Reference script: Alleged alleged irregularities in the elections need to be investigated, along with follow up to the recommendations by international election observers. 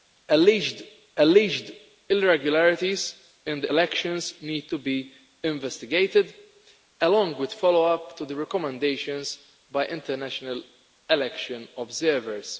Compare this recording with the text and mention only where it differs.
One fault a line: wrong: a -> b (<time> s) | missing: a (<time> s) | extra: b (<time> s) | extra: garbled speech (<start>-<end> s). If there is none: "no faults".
no faults